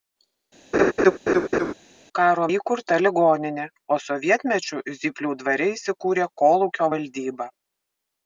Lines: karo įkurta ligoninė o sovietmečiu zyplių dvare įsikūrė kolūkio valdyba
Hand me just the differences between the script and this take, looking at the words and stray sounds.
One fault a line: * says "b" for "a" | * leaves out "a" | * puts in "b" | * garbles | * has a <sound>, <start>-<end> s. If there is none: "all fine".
* has a laugh, 0.7-1.7 s